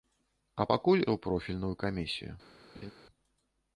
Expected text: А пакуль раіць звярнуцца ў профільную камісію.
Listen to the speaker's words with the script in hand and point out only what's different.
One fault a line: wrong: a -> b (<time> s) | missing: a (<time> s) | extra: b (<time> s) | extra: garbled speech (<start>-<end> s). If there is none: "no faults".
missing: раіць звярнуцца (1.0 s)